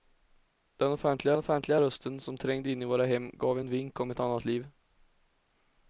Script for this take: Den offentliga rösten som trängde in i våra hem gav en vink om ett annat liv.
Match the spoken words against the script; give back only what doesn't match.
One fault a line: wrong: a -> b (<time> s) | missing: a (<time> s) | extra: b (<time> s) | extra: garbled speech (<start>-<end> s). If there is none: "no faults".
extra: offentliga (1.4 s)